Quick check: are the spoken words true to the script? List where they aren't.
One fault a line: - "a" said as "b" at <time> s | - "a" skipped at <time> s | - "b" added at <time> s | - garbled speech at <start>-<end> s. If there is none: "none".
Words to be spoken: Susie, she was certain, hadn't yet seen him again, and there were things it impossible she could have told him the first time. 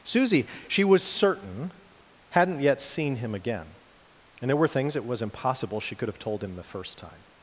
- "was" added at 5.0 s